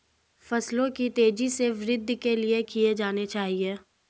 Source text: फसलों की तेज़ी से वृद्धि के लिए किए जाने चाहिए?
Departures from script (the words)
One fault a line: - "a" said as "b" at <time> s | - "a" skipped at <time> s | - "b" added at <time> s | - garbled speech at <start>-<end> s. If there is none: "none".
none